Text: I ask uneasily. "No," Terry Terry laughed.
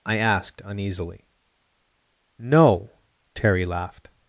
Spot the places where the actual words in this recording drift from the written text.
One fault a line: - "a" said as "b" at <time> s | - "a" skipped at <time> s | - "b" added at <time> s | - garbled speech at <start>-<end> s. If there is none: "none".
- "ask" said as "asked" at 0.2 s
- "Terry" skipped at 3.7 s